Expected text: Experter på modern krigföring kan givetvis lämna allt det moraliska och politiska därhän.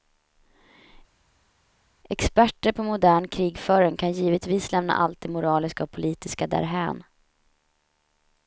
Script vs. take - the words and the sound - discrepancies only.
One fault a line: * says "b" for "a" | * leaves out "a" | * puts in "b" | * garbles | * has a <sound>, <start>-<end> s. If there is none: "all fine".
all fine